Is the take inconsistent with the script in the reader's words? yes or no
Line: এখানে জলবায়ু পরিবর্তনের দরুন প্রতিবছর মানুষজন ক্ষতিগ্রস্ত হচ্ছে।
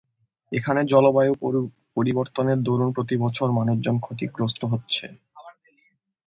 no